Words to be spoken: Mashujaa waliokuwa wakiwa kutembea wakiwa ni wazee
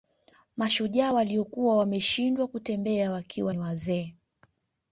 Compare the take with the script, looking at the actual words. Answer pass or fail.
fail